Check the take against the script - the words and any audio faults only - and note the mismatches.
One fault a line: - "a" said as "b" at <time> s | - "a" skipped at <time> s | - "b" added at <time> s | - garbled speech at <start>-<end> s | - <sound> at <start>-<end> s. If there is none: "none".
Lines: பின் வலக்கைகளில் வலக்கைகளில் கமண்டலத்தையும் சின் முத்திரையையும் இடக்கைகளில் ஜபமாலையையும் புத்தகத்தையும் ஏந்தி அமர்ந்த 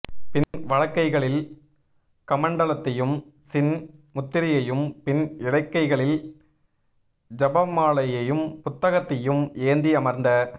- dropout at 0.4-0.5 s
- "வலக்கைகளில்" skipped at 1.4 s
- "பின்" added at 5.0 s